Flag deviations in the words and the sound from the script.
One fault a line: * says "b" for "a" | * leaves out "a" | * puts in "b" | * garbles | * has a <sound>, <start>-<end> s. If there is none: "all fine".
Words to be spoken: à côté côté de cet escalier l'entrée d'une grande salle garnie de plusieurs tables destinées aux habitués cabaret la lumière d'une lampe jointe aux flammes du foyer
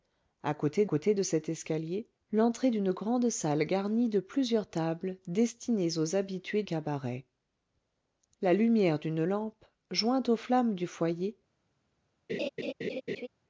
* has a laugh, 12.3-13.3 s